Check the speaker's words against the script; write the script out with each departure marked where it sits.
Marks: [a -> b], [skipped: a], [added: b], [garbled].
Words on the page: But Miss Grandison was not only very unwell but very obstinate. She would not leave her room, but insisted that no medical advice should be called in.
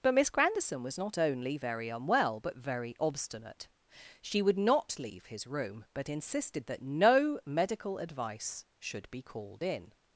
But Miss Grandison was not only very unwell but very obstinate. She would not leave [her -> his] room, but insisted that no medical advice should be called in.